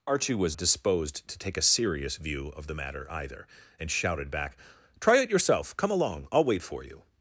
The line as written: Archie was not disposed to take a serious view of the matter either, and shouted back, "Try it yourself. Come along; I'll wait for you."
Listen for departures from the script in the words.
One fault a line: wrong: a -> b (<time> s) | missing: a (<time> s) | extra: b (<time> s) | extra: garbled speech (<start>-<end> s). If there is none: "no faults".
missing: not (0.6 s)